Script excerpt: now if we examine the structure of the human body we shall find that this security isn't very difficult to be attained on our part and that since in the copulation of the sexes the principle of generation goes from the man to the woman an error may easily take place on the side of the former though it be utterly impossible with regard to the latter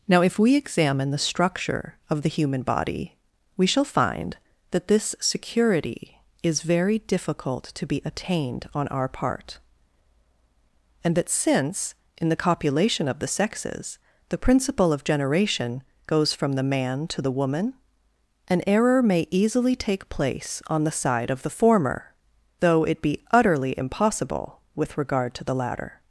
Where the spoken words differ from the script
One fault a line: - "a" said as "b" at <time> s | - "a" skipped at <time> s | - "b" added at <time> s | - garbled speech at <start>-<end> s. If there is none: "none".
- "isn't" said as "is" at 6.4 s